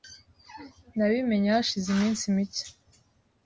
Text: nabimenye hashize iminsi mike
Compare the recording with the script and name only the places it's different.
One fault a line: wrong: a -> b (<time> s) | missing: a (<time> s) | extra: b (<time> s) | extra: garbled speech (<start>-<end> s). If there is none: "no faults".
no faults